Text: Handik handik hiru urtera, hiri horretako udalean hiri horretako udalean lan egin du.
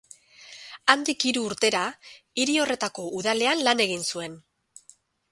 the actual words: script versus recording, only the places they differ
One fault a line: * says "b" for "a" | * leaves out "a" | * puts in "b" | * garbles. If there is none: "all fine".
* leaves out "handik"
* leaves out "hiri horretako udalean"
* says "zuen" for "du"